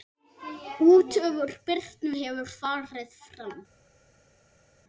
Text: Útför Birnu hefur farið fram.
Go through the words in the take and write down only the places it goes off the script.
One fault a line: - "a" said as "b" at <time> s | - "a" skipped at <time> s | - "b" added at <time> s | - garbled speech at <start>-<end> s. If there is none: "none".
none